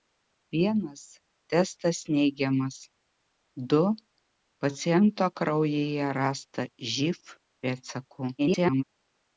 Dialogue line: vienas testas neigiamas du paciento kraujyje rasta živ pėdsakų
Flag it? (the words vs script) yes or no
yes